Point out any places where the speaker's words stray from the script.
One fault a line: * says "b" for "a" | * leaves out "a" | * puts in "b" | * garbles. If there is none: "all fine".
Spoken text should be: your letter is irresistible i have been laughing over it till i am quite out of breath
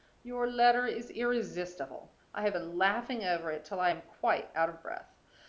all fine